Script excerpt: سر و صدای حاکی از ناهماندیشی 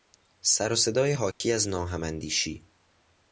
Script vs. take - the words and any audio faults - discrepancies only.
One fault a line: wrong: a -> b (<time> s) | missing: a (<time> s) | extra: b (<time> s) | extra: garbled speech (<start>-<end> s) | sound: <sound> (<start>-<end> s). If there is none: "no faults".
sound: dropout (1.3-1.4 s)